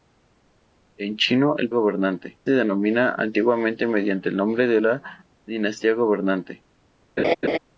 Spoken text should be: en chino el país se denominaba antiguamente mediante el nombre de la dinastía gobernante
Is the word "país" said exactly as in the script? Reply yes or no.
no